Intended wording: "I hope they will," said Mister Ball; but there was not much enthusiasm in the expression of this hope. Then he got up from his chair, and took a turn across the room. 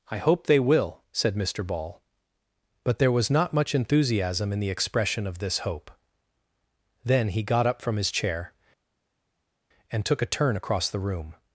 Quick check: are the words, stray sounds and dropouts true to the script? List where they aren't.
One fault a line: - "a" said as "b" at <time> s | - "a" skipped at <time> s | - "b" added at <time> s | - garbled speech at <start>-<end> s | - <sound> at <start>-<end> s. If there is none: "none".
none